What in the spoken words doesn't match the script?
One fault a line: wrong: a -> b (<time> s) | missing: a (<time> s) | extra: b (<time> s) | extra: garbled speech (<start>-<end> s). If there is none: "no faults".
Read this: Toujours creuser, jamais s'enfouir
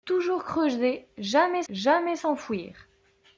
extra: jamais (1.7 s)